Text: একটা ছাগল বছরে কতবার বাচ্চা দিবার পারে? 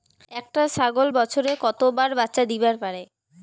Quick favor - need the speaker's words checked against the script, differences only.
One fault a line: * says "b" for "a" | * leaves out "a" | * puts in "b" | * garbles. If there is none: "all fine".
all fine